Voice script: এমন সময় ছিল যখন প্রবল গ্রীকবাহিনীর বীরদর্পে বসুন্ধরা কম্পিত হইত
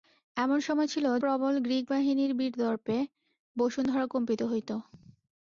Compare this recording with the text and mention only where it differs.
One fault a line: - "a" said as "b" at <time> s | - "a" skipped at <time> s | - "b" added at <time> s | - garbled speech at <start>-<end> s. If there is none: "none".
- "যখন" skipped at 1.1 s